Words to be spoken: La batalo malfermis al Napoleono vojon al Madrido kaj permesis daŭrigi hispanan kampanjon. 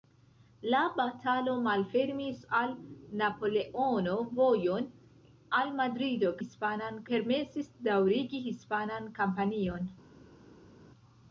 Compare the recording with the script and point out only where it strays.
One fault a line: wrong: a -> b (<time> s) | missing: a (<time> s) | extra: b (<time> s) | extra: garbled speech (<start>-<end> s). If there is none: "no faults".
wrong: kaj -> hispanan (6.4 s)